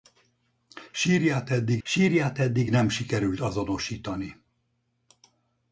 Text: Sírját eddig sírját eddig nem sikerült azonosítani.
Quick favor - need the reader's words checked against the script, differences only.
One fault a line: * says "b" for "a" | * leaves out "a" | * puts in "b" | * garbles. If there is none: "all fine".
all fine